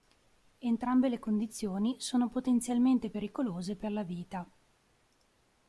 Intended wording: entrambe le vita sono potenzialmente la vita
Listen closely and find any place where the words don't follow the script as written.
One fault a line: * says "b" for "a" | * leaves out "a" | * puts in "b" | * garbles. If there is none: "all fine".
* says "condizioni" for "vita"
* puts in "pericolose per"